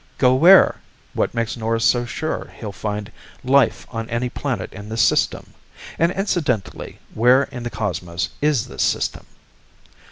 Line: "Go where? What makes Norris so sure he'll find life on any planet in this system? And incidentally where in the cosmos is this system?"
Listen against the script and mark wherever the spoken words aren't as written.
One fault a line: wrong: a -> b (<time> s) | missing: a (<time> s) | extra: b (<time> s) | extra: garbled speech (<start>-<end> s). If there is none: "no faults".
no faults